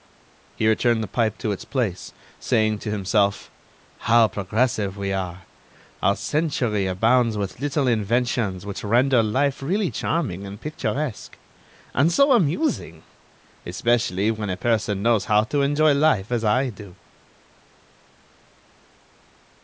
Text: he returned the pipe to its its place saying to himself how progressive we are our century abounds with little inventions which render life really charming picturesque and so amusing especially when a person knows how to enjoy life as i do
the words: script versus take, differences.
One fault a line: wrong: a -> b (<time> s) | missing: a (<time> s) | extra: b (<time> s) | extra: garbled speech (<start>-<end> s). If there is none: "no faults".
missing: its (1.6 s)
extra: and (10.5 s)